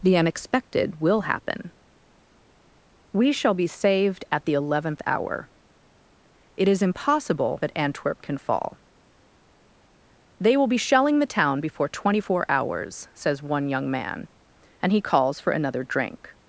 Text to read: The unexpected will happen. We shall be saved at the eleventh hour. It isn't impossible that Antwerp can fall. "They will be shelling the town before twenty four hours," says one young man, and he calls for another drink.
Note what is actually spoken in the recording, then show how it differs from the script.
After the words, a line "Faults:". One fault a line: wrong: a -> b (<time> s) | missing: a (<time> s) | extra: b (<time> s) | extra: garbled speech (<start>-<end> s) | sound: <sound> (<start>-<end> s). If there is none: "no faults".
The unexpected will happen. We shall be saved at the eleventh hour. It is impossible that Antwerp can fall. "They will be shelling the town before twenty four hours," says one young man, and he calls for another drink.
Faults:
wrong: isn't -> is (6.7 s)